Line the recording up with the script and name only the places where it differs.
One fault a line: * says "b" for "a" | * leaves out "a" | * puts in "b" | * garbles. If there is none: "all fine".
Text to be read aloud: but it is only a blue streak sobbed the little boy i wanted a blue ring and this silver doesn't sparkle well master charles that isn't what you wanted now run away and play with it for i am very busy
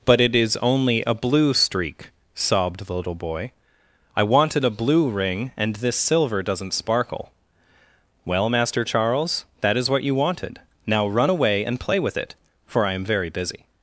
* says "is" for "isn't"